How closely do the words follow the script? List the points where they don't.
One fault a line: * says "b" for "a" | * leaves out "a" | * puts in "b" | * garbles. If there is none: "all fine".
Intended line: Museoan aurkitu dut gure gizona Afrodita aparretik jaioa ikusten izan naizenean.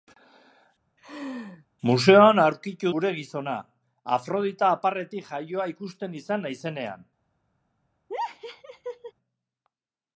* leaves out "dut"